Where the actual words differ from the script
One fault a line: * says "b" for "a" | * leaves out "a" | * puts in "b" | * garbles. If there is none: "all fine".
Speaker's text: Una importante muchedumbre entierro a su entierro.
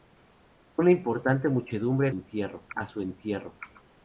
all fine